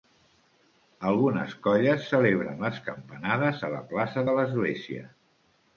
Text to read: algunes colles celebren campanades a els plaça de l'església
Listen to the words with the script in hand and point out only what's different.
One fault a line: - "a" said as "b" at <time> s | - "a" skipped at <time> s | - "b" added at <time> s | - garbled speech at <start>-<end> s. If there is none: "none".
- "les" added at 2.7 s
- "els" said as "la" at 3.8 s